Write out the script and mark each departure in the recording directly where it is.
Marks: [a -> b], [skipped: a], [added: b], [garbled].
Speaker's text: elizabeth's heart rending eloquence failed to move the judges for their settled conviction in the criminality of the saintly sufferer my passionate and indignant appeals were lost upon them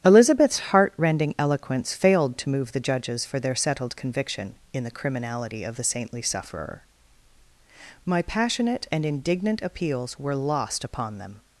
elizabeth's heart rending eloquence failed to move the judges for their settled conviction in the criminality of the saintly sufferer my passionate and indignant appeals were lost upon them